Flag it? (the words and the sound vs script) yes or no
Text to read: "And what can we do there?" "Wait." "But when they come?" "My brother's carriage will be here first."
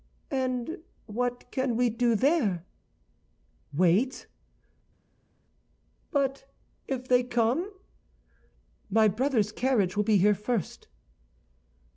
yes